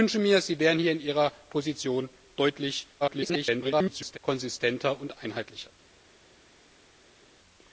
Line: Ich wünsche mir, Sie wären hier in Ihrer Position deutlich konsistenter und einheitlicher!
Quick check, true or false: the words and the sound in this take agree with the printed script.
false